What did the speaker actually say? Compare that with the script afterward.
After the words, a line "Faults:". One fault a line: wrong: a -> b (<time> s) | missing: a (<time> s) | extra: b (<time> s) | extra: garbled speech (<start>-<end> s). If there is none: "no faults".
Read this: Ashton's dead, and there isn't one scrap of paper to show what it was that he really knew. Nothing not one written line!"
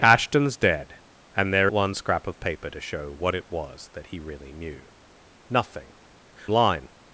Ashton's dead, and there one scrap of paper to show what it was that he really knew. Nothing line!"
Faults:
missing: isn't (1.7 s)
missing: not one written (5.9 s)